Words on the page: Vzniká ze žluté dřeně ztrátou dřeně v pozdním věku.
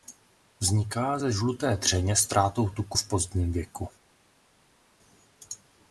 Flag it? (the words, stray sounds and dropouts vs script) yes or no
yes